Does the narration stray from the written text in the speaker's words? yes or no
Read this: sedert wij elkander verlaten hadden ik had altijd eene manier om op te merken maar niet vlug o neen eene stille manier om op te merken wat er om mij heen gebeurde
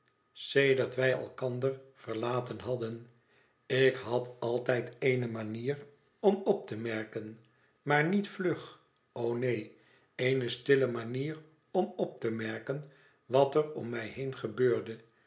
no